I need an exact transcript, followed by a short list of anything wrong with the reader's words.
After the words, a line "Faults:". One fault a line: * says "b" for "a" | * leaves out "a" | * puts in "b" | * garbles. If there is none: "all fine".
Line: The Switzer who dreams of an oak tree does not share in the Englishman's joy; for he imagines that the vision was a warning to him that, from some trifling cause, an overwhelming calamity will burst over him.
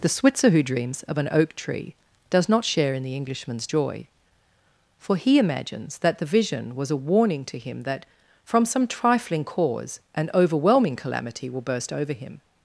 The Switzer who dreams of an oak tree does not share in the Englishman's joy; for he imagines that the vision was a warning to him that, from some trifling cause, an overwhelming calamity will burst over him.
Faults:
all fine